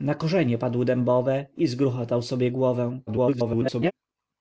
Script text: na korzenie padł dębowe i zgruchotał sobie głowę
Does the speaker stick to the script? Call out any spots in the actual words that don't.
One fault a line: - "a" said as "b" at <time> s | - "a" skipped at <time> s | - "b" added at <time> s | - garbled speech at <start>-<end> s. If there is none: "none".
- garbled speech at 3.1-3.9 s